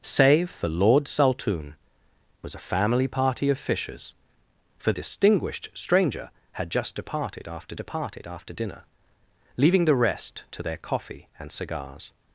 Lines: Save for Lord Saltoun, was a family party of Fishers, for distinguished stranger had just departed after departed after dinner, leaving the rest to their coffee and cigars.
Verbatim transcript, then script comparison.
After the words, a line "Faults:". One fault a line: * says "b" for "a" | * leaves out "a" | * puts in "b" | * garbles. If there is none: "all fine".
Save for Lord Saltoun, was a family party of Fishers, for distinguished stranger had just departed after departed after dinner, leaving the rest to their coffee and cigars.
Faults:
all fine